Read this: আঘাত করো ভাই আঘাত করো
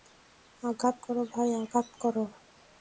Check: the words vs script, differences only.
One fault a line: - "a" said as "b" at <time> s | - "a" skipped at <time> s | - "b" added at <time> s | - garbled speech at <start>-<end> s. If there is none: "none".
none